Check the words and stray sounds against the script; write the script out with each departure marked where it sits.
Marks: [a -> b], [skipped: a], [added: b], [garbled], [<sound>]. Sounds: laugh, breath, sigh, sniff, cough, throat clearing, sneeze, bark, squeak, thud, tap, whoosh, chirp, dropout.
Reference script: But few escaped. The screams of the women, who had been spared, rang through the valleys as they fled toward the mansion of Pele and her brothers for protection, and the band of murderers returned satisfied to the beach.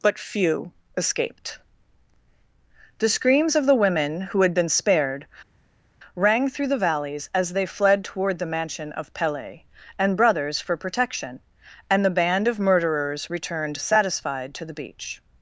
But few escaped. The screams of the women, who had been spared, rang through the valleys as they fled toward the mansion of Pele and [skipped: her] brothers for protection, and the band of murderers returned satisfied to the beach.